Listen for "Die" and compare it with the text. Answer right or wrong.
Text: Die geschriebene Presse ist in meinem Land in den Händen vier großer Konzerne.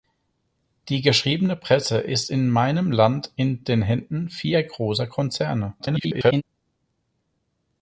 right